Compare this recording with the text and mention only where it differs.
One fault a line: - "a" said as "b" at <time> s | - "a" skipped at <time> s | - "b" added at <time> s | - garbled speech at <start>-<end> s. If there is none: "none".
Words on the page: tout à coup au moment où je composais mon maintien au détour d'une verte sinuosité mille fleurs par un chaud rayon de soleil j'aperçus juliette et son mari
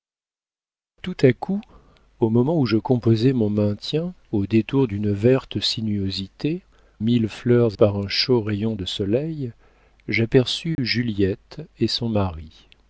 none